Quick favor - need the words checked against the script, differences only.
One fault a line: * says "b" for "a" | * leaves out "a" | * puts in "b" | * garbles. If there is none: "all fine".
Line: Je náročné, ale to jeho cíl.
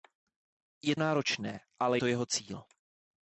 all fine